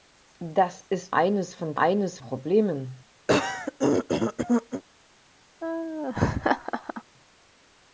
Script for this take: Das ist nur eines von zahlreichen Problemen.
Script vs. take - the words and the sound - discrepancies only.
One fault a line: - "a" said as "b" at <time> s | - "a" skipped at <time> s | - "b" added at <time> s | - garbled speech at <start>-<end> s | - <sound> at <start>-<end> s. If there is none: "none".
- "nur" skipped at 1.1 s
- "zahlreichen" said as "eines" at 1.8 s
- throat clearing at 3.3-4.8 s
- laugh at 5.6-7.0 s